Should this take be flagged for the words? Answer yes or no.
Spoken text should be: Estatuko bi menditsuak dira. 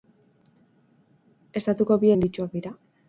no